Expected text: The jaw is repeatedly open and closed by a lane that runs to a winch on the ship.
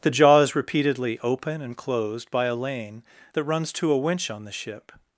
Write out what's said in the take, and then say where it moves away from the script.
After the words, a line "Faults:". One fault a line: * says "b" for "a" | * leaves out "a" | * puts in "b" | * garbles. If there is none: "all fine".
The jaw is repeatedly open and closed by a lane that runs to a winch on the ship.
Faults:
all fine